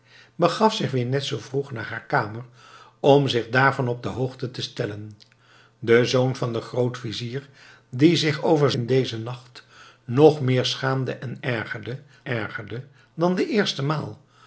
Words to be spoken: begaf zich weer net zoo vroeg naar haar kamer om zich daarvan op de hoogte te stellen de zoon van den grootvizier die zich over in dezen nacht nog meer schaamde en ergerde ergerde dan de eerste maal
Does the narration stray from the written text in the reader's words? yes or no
no